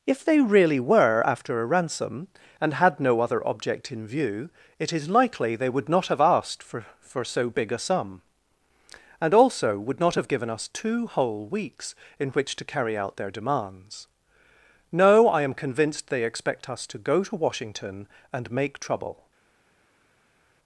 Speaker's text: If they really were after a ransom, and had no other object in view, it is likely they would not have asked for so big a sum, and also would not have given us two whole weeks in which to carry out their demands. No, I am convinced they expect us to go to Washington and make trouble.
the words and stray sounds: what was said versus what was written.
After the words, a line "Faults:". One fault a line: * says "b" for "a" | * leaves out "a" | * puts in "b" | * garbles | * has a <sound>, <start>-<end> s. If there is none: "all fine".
If they really were after a ransom, and had no other object in view, it is likely they would not have asked for for so big a sum, and also would not have given us two whole weeks in which to carry out their demands. No, I am convinced they expect us to go to Washington and make trouble.
Faults:
* puts in "for"